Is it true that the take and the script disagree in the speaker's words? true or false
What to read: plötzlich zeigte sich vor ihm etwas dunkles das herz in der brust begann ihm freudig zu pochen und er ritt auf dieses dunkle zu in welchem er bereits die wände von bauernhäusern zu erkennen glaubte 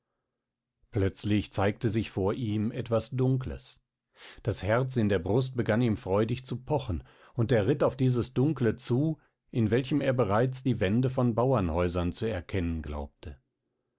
false